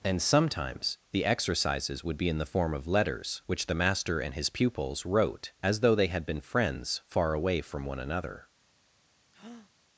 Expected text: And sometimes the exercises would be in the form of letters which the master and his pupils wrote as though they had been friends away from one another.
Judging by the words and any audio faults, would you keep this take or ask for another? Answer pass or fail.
fail